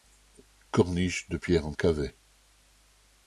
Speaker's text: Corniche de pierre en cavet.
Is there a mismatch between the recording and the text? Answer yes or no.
no